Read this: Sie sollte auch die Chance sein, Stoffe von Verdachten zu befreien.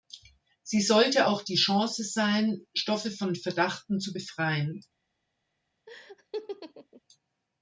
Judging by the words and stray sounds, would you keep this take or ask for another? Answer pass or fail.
fail